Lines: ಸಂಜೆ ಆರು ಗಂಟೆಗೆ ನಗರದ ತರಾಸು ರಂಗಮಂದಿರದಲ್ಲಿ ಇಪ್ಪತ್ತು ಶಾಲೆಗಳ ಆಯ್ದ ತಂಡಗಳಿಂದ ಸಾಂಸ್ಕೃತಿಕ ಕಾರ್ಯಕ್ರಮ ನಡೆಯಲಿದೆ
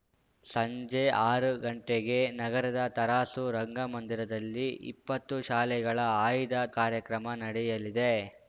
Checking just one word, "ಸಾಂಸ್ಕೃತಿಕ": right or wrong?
wrong